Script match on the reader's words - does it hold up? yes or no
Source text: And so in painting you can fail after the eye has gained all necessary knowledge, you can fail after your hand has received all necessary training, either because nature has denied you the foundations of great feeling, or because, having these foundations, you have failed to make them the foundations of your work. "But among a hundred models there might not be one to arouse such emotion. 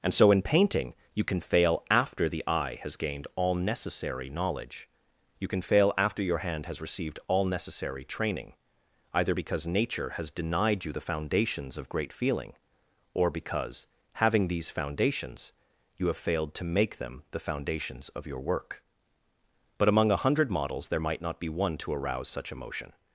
yes